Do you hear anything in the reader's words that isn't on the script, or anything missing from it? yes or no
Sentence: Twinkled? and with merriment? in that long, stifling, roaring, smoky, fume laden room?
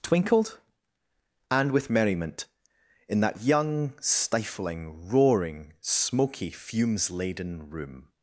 yes